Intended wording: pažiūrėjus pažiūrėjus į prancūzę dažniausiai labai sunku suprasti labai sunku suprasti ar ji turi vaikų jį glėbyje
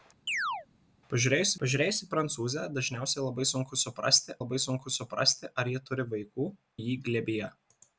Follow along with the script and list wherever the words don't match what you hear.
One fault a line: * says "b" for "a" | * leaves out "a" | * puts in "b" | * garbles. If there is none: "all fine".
all fine